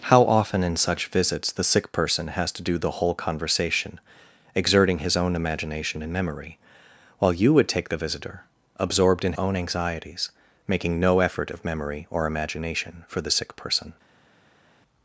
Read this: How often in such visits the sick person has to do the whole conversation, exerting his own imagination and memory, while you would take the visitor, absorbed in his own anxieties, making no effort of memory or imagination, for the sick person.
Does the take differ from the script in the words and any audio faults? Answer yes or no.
yes